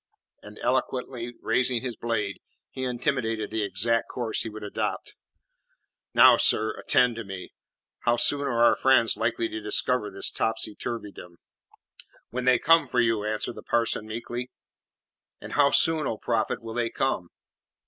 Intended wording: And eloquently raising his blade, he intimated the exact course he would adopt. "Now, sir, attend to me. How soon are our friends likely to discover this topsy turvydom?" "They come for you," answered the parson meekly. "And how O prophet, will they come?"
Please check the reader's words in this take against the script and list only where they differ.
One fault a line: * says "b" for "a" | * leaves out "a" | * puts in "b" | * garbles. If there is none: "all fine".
* puts in "When"
* puts in "soon"